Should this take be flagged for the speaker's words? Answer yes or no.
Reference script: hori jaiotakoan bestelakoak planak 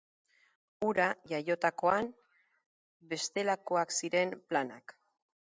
yes